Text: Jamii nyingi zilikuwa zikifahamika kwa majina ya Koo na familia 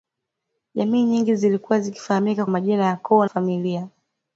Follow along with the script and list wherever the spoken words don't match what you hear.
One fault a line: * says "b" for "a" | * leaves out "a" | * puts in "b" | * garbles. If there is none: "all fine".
* leaves out "kwa"
* leaves out "na"